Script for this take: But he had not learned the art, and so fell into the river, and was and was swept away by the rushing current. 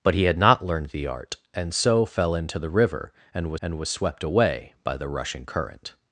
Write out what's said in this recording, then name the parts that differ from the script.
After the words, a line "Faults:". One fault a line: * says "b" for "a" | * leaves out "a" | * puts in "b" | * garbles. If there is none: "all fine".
But he had not learned the art, and so fell into the river, and was and was swept away by the rushing current.
Faults:
all fine